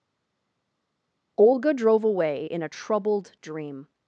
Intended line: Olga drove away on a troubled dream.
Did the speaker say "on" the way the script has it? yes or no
no